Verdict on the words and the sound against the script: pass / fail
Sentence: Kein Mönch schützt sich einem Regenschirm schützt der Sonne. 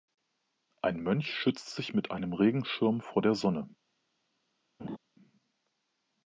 fail